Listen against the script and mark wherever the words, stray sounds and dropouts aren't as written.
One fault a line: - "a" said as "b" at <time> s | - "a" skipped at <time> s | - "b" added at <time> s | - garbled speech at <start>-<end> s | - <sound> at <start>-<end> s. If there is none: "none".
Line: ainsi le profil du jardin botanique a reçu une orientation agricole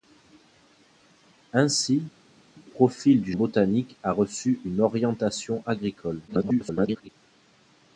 - "le" skipped at 2.0 s
- "jardin" skipped at 3.3 s
- garbled speech at 6.3-7.1 s